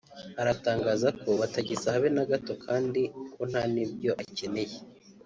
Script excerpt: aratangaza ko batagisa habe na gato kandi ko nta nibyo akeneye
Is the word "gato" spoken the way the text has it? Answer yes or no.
yes